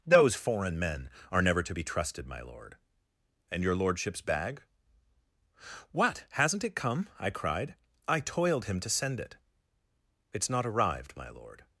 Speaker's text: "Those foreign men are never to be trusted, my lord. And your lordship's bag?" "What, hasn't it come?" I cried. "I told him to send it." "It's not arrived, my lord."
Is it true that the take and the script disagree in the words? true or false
true